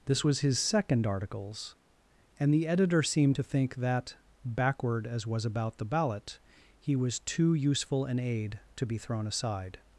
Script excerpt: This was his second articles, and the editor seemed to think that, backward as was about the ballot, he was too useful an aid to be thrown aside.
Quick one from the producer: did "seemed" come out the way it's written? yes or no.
yes